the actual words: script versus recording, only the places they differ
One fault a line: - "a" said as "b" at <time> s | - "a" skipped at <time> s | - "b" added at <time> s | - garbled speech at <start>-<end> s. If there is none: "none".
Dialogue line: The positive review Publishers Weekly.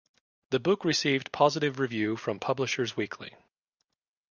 - "book received" added at 0.6 s
- "from" added at 2.2 s